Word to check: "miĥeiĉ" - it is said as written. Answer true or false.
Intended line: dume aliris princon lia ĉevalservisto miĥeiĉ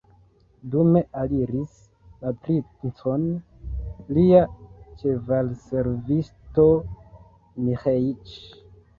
true